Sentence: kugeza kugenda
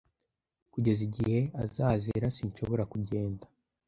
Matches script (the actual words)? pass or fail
fail